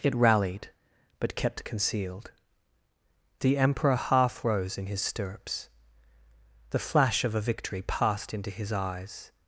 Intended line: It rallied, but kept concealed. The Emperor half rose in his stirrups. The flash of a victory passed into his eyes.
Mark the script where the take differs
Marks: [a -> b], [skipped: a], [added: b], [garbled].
It rallied, but kept concealed. The Emperor half rose in his stirrups. The flash of a victory passed into his eyes.